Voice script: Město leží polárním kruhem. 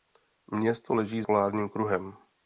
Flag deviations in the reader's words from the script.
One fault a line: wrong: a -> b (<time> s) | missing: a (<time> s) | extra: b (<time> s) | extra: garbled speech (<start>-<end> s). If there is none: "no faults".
no faults